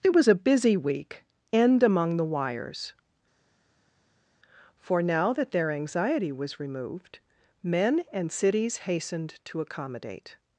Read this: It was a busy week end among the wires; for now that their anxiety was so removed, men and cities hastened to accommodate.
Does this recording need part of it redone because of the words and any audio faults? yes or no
yes